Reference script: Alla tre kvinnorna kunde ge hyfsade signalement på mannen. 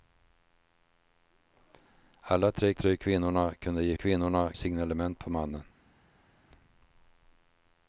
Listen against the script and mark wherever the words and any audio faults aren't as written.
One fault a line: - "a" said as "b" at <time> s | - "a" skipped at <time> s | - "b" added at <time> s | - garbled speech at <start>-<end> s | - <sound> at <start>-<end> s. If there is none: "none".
- "tre" added at 2.7 s
- "hyfsade" said as "kvinnorna" at 3.9 s